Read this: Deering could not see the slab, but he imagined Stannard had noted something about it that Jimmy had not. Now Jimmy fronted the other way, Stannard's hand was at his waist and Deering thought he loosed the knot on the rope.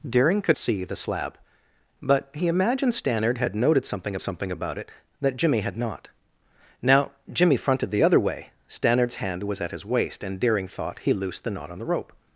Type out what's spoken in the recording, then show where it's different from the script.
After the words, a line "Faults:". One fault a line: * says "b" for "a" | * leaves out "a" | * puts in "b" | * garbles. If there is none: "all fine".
Deering could see the slab, but he imagined Stannard had noted something something about it that Jimmy had not. Now Jimmy fronted the other way, Stannard's hand was at his waist and Deering thought he loosed the knot on the rope.
Faults:
* leaves out "not"
* puts in "something"